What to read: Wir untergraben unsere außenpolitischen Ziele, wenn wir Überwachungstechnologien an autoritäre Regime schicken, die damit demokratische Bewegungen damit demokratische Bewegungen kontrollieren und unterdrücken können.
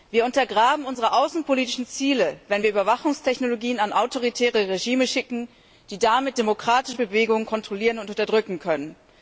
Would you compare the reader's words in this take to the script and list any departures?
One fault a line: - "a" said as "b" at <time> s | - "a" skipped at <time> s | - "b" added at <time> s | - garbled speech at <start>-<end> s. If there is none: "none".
- "damit demokratische Bewegungen" skipped at 7.5 s